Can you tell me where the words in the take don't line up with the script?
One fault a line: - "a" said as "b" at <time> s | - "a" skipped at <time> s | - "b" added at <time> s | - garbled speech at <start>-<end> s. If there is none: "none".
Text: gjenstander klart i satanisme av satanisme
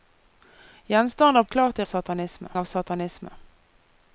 none